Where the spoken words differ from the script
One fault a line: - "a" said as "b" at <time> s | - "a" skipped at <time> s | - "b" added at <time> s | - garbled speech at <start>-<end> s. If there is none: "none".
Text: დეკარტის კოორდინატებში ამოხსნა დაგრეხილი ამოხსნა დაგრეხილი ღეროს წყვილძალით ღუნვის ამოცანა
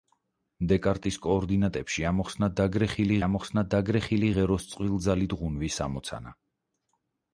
none